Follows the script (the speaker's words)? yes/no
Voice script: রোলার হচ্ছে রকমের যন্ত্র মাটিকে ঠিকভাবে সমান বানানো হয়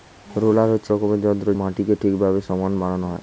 yes